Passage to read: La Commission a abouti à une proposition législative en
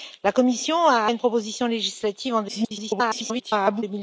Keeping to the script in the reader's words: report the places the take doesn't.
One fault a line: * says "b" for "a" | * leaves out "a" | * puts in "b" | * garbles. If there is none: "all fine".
* leaves out "abouti"
* garbles